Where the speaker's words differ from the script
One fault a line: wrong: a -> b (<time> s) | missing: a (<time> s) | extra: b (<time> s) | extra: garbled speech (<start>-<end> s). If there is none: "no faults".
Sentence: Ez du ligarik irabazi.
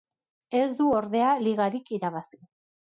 extra: ordea (1.0 s)